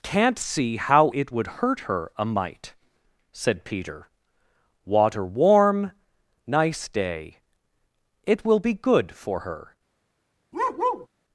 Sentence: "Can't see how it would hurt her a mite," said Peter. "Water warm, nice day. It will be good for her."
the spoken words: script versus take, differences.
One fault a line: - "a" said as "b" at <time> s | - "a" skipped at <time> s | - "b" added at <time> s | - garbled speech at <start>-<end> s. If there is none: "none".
none